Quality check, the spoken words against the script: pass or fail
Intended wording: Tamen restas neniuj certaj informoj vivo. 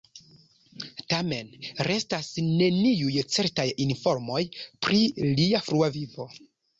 fail